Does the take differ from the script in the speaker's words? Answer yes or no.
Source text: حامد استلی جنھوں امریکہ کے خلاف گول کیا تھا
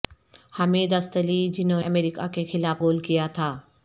no